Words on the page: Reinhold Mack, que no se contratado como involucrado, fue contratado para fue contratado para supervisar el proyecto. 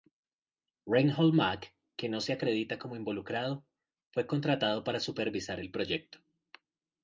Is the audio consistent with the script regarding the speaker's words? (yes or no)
no